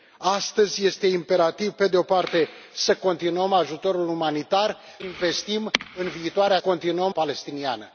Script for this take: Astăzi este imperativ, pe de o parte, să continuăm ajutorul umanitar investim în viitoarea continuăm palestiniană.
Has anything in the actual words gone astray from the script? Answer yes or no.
no